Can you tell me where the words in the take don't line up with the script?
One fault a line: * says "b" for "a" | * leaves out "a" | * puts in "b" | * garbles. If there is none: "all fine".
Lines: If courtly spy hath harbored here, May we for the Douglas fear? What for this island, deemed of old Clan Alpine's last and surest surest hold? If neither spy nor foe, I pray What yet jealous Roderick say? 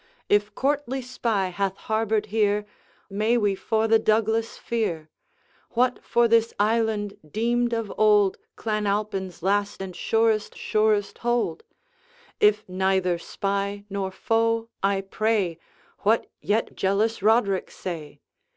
all fine